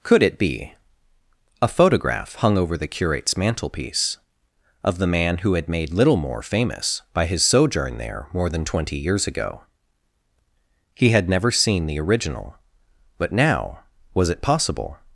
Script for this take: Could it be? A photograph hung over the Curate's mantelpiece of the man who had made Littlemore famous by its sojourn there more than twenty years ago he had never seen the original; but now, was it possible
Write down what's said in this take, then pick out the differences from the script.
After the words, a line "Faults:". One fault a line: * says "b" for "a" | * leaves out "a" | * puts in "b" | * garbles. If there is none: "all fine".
Could it be? A photograph hung over the Curate's mantelpiece of the man who had made Littlemore famous by his sojourn there more than twenty years ago he had never seen the original; but now, was it possible
Faults:
* says "his" for "its"